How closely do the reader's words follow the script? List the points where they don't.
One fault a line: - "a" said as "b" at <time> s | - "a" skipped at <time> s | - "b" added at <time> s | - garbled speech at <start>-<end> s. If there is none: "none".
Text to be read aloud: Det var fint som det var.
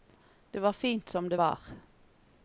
none